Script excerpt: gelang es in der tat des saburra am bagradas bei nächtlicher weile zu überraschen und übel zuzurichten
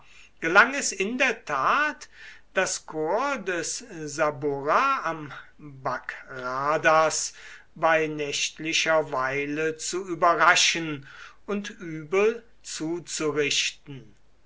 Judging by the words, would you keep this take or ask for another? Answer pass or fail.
fail